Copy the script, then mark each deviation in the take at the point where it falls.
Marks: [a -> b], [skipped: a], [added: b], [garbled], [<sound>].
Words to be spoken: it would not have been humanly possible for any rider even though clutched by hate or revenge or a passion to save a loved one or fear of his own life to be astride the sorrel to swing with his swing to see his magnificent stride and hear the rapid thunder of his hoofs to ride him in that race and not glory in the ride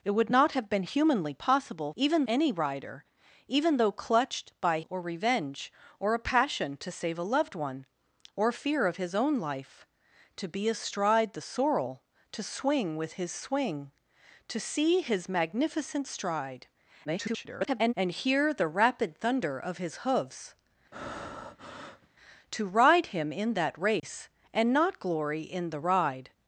it would not have been humanly possible [for -> even] any rider even though clutched by [skipped: hate] or revenge or a passion to save a loved one or fear of his own life to be astride the sorrel to swing with his swing to see his magnificent stride [garbled] and hear the rapid thunder of his hoofs [breath] to ride him in that race [dropout] and not glory in the ride